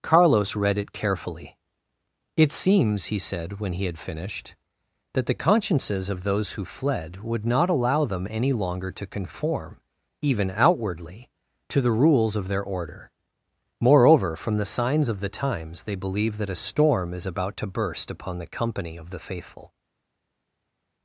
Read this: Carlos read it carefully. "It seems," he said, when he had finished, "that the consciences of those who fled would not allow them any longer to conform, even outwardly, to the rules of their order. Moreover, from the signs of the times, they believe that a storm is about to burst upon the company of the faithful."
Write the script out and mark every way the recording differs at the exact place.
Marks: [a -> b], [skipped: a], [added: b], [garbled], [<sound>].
Carlos read it carefully. "It seems," he said, when he had finished, "that the consciences of those who fled would not allow them any longer to conform, even outwardly, to the rules of their order. Moreover, from the signs of the times, they believe that a storm is about to burst upon the company of the faithful."